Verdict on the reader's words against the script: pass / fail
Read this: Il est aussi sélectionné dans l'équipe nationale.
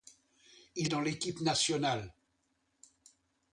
fail